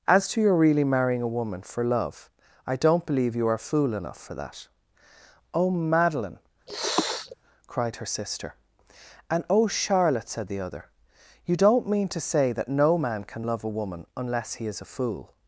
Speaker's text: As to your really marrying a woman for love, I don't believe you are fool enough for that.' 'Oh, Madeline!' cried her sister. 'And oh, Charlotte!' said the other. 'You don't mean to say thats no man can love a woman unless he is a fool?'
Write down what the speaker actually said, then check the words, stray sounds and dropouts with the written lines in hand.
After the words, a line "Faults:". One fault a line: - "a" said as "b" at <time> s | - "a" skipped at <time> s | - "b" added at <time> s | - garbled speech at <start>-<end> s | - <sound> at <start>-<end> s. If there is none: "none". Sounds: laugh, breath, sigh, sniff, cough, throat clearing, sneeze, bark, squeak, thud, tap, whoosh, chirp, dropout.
As to your really marrying a woman for love, I don't believe you are fool enough for that.' 'Oh, Madeline!' cried her sister. 'And oh, Charlotte!' said the other. 'You don't mean to say that no man can love a woman unless he is a fool?'
Faults:
- sniff at 6.7-7.4 s
- "thats" said as "that" at 12.5 s